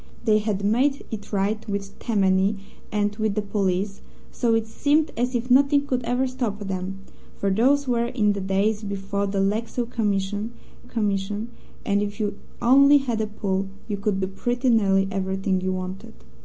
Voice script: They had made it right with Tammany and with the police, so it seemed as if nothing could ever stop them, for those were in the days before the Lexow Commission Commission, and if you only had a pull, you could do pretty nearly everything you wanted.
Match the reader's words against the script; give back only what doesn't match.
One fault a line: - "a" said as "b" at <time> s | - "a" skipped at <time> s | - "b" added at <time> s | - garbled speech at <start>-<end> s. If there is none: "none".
none